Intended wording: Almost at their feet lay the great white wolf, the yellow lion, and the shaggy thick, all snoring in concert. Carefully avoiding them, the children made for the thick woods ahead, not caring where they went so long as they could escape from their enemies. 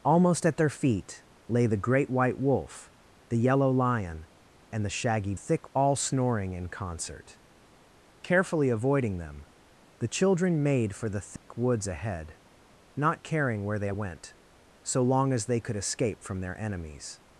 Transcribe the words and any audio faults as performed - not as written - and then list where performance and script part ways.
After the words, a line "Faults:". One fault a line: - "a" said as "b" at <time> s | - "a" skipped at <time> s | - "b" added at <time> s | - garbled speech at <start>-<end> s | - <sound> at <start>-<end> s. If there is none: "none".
Almost at their feet lay the great white wolf, the yellow lion, and the shaggy thick, all snoring in concert. Carefully avoiding them, the children made for the thick woods ahead, not caring where they went so long as they could escape from their enemies.
Faults:
- dropout at 11.4-11.5 s